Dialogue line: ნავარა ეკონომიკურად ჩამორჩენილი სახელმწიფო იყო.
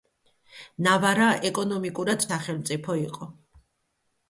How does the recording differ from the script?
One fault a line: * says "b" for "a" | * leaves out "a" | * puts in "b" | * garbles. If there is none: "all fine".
* leaves out "ჩამორჩენილი"